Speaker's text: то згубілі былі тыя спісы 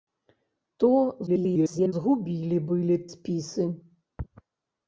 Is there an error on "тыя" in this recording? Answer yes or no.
yes